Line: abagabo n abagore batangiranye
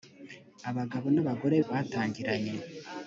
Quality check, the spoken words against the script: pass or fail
pass